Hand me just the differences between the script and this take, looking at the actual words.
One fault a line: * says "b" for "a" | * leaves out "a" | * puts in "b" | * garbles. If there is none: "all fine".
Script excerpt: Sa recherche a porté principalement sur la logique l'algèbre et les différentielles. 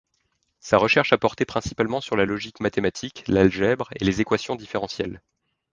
* puts in "mathématique"
* puts in "équations"